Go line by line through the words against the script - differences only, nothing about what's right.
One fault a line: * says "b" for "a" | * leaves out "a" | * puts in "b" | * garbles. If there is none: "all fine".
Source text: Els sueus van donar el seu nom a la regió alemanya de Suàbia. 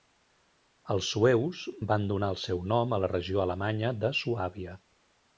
all fine